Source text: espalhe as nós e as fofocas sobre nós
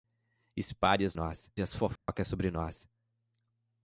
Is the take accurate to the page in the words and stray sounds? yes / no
no